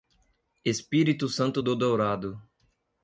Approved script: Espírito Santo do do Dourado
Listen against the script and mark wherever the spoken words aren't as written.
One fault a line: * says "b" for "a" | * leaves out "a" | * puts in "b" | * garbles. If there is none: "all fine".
* leaves out "do"